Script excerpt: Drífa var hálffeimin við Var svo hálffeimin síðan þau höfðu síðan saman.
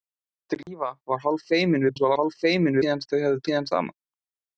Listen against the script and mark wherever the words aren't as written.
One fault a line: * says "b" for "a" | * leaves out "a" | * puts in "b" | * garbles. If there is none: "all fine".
all fine